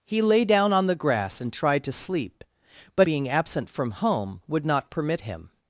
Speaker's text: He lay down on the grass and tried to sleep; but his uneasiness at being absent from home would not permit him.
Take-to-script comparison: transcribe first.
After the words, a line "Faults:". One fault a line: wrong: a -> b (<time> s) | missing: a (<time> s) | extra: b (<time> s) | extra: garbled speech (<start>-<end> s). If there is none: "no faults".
He lay down on the grass and tried to sleep; but being absent from home would not permit him.
Faults:
missing: his uneasiness at (3.1 s)